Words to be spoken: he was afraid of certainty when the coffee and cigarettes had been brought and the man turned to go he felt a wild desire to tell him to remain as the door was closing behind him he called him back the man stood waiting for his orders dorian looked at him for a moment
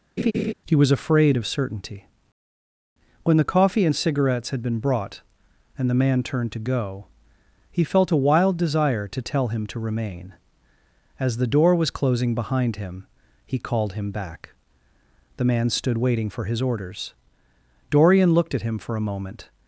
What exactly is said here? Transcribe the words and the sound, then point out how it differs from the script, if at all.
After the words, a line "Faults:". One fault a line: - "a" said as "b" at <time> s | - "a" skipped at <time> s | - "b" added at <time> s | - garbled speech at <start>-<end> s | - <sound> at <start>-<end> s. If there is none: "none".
he was afraid of certainty when the coffee and cigarettes had been brought and the man turned to go he felt a wild desire to tell him to remain as the door was closing behind him he called him back the man stood waiting for his orders dorian looked at him for a moment
Faults:
- laugh at 0.2-0.5 s